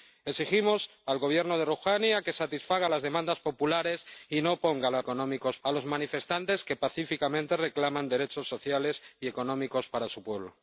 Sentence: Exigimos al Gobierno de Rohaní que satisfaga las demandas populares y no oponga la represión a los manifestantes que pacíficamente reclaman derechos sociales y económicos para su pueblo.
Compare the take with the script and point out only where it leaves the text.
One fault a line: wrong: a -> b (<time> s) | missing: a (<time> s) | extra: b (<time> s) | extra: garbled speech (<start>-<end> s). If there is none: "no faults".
wrong: represión -> económicos (5.0 s)